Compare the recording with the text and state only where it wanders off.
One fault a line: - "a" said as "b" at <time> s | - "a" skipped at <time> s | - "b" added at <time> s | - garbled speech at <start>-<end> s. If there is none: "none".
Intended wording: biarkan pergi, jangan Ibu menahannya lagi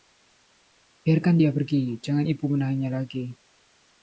- "dia" added at 1.3 s